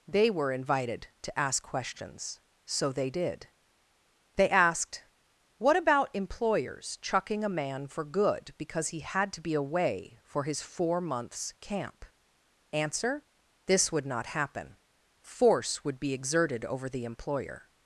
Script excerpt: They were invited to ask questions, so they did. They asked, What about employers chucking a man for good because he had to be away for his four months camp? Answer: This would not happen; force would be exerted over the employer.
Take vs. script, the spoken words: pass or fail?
pass